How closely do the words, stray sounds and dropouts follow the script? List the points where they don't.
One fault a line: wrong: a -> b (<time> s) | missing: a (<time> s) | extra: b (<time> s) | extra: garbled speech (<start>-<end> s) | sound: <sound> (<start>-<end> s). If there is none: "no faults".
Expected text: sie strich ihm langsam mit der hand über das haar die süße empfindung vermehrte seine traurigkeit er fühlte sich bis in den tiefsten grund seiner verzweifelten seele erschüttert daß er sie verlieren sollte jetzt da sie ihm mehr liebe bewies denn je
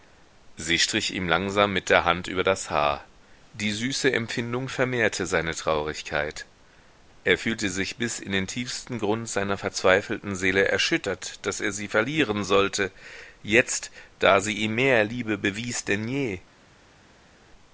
no faults